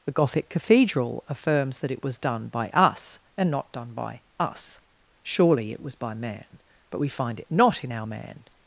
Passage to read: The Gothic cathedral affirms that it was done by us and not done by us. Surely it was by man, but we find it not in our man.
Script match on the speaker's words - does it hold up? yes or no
yes